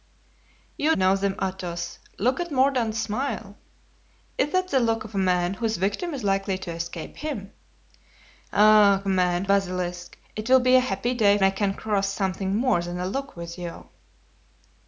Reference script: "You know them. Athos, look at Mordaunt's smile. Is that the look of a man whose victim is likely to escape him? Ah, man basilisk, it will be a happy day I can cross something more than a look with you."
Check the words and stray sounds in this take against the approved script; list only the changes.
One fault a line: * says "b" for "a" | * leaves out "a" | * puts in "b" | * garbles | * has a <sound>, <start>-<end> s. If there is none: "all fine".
all fine